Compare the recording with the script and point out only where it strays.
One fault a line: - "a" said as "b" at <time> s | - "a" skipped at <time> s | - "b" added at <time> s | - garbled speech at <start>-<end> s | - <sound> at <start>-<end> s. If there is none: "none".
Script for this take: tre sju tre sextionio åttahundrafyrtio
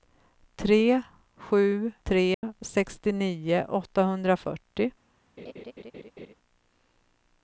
- dropout at 2.3-2.4 s
- laugh at 5.4-6.3 s